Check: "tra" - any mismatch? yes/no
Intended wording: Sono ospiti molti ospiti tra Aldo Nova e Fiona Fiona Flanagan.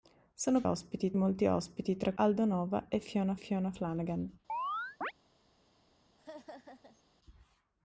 no